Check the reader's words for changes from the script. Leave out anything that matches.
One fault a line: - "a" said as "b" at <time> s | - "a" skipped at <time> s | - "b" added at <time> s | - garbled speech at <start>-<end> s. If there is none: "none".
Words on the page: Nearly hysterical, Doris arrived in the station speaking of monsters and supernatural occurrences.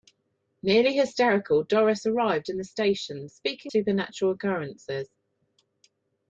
- "of monsters and" skipped at 3.7 s